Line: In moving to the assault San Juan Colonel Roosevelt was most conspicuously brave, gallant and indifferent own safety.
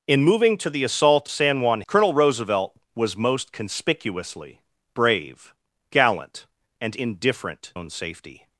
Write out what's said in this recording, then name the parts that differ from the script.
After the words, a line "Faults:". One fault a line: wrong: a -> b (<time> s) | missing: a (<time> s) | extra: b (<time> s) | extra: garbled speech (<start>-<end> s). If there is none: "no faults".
In moving to the assault San Juan Colonel Roosevelt was most conspicuously brave, gallant and indifferent own safety.
Faults:
no faults